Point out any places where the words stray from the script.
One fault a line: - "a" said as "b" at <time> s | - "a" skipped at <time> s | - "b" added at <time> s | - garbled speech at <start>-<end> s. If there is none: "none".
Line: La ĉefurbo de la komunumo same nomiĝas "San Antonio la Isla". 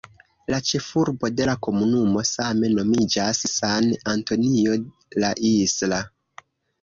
none